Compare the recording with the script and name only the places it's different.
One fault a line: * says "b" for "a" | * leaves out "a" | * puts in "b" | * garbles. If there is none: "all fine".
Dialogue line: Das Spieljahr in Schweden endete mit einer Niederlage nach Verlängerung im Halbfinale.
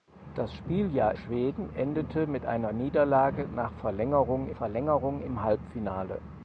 * leaves out "in"
* puts in "Verlängerung"